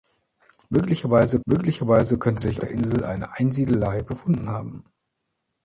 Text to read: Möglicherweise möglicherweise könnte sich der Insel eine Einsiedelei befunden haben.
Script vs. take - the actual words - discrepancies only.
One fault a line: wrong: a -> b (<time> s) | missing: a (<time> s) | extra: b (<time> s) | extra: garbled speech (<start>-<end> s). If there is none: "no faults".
no faults